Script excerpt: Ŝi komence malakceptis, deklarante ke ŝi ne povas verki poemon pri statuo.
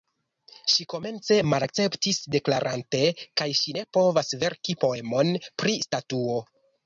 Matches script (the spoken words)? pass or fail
pass